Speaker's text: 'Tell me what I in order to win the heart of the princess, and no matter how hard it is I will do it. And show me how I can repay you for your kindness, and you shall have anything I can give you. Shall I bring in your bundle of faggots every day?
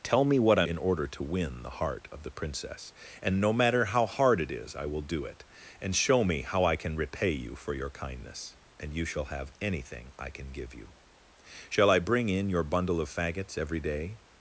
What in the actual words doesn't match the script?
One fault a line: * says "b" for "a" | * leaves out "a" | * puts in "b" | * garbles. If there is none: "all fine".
all fine